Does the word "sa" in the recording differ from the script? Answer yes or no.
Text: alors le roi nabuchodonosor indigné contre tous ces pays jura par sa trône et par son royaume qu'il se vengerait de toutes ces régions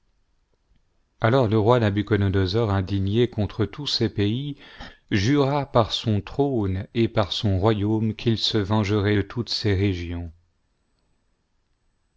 yes